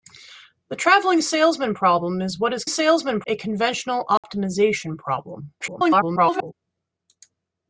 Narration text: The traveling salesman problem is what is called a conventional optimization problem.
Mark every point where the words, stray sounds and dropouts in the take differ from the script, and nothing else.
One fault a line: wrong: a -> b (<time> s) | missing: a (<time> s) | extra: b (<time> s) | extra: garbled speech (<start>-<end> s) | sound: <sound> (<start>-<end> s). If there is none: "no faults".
wrong: called -> salesman (2.7 s)
sound: dropout (4.2-4.2 s)
extra: garbled speech (5.6-6.5 s)